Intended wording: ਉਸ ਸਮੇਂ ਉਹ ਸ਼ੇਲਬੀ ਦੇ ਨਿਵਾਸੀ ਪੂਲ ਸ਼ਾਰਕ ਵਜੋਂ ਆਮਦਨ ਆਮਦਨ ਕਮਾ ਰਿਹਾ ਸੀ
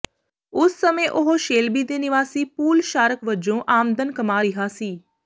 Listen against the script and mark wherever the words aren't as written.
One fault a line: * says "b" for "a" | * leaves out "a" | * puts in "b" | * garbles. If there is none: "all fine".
* leaves out "ਆਮਦਨ"